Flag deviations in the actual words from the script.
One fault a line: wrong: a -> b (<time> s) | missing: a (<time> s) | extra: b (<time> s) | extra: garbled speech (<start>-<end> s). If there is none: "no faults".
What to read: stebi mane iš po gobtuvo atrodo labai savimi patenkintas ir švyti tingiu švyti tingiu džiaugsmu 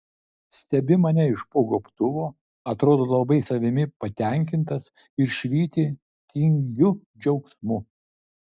missing: švyti tingiu (7.0 s)